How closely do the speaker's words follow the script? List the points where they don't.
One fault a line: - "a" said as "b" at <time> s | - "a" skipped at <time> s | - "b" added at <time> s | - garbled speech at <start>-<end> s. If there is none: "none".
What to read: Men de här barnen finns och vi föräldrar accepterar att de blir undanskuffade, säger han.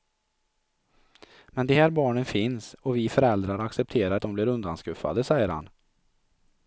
none